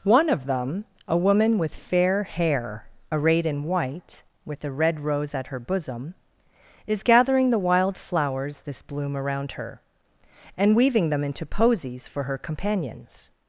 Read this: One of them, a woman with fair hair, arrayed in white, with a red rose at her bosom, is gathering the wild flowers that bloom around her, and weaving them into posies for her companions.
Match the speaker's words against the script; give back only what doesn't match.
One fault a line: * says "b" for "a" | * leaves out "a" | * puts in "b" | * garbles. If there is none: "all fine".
* says "this" for "that"